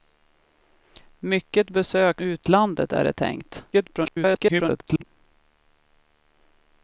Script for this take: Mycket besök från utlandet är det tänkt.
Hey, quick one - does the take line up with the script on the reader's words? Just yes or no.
no